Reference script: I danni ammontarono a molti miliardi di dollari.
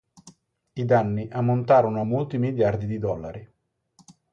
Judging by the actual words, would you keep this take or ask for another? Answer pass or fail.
pass